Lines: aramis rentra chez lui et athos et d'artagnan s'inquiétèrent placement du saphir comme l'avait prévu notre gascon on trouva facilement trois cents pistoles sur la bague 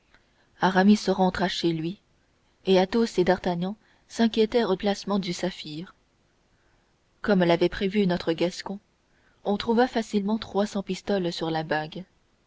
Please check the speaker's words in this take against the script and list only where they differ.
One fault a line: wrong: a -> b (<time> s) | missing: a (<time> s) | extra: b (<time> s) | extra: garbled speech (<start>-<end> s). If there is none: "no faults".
no faults